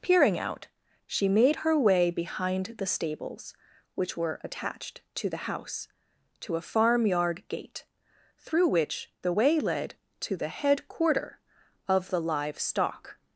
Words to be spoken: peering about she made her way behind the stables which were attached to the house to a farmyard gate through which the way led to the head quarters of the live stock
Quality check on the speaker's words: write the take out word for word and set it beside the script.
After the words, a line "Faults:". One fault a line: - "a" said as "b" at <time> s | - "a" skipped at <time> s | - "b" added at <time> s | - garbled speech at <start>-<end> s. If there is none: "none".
peering out she made her way behind the stables which were attached to the house to a farmyard gate through which the way led to the head quarter of the live stock
Faults:
- "about" said as "out" at 0.4 s
- "quarters" said as "quarter" at 10.9 s